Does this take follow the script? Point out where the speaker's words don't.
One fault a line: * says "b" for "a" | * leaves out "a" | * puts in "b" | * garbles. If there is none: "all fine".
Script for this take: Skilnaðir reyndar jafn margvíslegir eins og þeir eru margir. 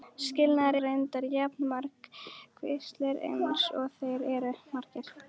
all fine